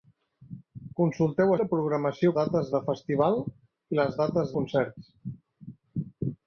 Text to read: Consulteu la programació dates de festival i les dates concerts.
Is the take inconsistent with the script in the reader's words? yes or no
no